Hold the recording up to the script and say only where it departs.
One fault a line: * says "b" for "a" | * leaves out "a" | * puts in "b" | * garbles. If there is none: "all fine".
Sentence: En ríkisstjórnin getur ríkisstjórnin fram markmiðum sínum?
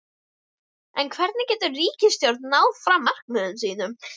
* says "hvernig" for "ríkisstjórnin"
* puts in "náð"